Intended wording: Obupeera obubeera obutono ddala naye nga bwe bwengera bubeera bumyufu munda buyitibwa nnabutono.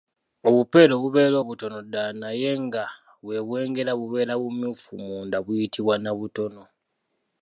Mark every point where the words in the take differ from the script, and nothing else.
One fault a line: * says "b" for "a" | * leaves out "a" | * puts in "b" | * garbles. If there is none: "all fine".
all fine